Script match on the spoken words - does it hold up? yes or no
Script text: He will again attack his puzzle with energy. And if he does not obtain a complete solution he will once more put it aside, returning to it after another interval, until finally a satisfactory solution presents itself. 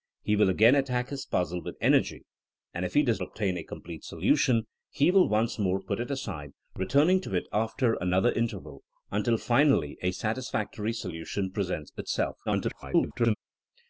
no